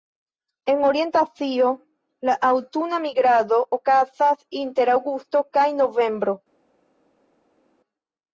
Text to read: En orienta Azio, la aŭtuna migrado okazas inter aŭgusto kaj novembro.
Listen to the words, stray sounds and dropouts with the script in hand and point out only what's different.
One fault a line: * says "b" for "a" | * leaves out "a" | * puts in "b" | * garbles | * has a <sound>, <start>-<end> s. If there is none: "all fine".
all fine